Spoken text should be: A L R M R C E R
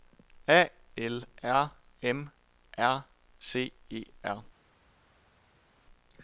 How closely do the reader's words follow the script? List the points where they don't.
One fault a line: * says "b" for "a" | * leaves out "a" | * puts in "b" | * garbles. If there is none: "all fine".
all fine